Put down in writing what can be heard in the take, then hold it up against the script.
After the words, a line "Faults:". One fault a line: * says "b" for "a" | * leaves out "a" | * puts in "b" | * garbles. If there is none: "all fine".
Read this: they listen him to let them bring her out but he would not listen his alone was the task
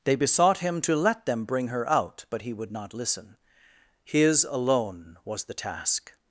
they besought him to let them bring her out but he would not listen his alone was the task
Faults:
* says "besought" for "listen"